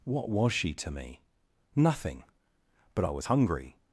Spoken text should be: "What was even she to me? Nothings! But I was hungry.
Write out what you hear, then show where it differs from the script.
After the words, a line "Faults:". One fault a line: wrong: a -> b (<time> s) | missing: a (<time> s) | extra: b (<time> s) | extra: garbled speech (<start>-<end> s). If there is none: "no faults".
"What was she to me? Nothing! But I was hungry.
Faults:
missing: even (0.5 s)
wrong: Nothings -> Nothing (1.8 s)